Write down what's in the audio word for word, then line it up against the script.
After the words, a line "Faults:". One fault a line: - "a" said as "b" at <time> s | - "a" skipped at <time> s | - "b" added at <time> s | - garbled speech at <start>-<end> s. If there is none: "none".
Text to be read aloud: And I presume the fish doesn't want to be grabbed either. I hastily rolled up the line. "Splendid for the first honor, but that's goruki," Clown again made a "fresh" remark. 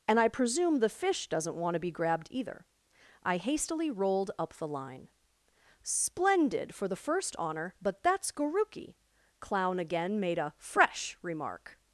And I presume the fish doesn't want to be grabbed either. I hastily rolled up the line. "Splendid for the first honor, but that's goruki," Clown again made a "fresh" remark.
Faults:
none